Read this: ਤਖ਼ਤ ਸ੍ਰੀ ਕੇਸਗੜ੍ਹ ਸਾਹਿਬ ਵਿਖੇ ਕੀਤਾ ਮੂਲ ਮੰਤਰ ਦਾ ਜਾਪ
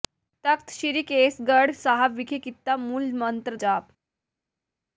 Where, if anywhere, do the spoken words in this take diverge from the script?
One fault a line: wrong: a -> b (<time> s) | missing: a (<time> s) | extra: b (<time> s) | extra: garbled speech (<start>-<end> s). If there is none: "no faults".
missing: ਦਾ (3.5 s)